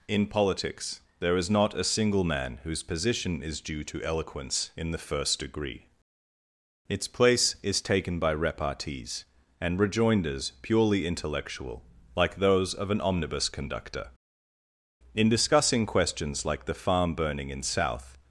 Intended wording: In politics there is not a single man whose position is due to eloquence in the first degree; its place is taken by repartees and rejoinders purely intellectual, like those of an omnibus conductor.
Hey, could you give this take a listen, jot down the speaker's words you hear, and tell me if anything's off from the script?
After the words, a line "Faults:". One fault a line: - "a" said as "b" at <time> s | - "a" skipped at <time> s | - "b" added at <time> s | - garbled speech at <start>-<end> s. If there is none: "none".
In politics there is not a single man whose position is due to eloquence in the first degree; its place is taken by repartees and rejoinders purely intellectual, like those of an omnibus conductor. In discussing questions like the farm burning in South
Faults:
- "In discussing questions like the farm burning in South" added at 15.1 s